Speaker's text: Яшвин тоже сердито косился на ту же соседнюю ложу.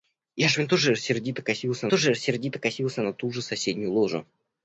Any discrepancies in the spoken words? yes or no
yes